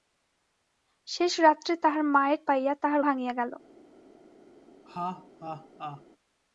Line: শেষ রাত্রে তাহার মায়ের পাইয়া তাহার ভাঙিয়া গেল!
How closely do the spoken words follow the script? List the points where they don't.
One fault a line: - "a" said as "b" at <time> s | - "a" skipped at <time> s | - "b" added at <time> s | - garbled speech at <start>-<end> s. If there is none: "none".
none